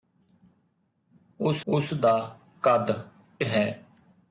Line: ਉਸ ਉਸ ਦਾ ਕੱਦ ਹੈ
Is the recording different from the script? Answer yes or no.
no